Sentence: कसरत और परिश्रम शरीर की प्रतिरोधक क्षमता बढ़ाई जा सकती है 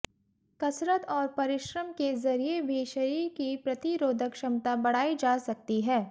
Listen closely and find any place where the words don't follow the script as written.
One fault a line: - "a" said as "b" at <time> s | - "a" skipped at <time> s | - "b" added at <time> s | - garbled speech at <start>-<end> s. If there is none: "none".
- "के जरिए भी" added at 1.9 s